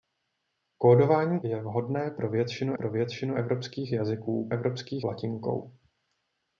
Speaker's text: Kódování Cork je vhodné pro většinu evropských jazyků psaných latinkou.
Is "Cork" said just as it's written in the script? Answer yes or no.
no